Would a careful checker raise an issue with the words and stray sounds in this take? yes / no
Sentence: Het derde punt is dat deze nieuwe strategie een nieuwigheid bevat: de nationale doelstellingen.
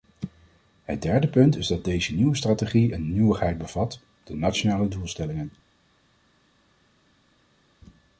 no